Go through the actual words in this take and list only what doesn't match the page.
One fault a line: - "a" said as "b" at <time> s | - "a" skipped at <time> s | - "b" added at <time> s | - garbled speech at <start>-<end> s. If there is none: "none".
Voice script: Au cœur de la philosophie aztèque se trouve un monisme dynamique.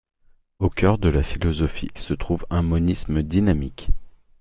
- "aztèque" skipped at 1.9 s